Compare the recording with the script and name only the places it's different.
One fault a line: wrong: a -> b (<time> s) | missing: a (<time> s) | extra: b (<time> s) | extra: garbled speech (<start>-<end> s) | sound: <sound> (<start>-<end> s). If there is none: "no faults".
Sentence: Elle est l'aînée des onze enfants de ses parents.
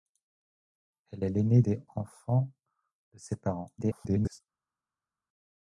missing: onze (1.8 s)
extra: garbled speech (3.8-4.4 s)